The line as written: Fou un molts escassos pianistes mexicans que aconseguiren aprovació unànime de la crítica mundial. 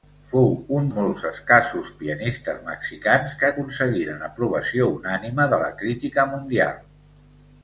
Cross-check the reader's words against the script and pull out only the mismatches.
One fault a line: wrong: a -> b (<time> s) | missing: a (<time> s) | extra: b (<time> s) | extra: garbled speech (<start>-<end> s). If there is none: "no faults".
no faults